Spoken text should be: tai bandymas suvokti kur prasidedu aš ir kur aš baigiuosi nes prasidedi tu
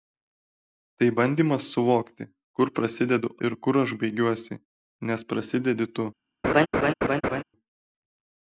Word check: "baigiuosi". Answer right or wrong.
right